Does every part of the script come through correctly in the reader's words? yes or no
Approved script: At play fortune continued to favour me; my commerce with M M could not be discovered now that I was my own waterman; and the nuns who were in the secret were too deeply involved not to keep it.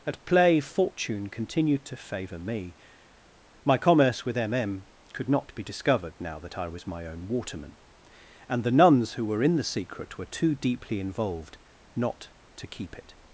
yes